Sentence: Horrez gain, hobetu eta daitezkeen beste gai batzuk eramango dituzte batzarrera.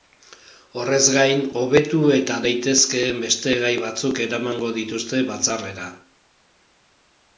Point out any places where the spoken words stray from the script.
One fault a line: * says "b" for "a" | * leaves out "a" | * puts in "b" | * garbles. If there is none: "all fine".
all fine